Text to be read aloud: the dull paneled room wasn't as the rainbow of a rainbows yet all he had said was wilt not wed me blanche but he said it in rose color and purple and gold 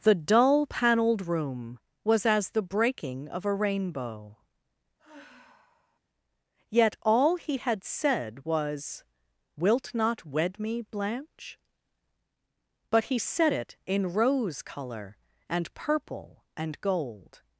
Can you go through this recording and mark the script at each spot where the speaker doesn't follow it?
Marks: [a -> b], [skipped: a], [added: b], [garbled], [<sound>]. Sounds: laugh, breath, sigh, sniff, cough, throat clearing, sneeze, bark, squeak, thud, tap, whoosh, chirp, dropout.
the dull paneled room [wasn't -> was] as the [rainbow -> breaking] of a [rainbows -> rainbow] [sigh] yet all he had said was wilt not wed me blanche but he said it in rose color and purple and gold